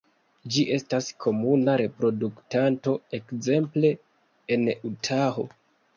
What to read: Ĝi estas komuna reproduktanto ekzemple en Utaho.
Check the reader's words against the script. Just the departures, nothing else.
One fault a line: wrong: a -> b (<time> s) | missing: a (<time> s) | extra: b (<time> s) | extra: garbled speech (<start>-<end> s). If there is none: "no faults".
no faults